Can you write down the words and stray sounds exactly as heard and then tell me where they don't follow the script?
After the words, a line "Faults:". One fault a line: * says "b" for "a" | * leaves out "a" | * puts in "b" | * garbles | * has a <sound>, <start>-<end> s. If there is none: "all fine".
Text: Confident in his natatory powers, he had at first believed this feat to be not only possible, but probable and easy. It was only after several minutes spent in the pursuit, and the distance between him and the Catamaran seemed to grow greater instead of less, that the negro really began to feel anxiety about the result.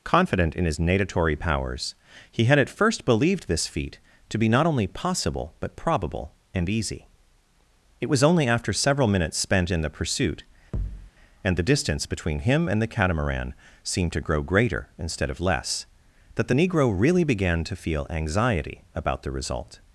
Confident in his natatory powers, he had at first believed this feat to be not only possible, but probable and easy. It was only after several minutes spent in the pursuit, and the distance between him and the Catamaran seemed to grow greater instead of less, that the negro really began to feel anxiety about the result.
Faults:
* has a thud, 10.7-11.1 s